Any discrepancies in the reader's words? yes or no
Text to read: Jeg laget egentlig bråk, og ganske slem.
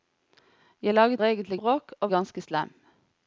no